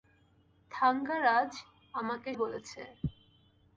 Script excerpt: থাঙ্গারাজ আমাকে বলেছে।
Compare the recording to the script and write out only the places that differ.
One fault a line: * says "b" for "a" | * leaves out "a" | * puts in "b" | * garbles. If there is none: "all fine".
all fine